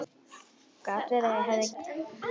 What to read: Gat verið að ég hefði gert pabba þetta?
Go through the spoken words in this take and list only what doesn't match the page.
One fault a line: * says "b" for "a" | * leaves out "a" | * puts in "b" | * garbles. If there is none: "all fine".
* leaves out "gert pabba"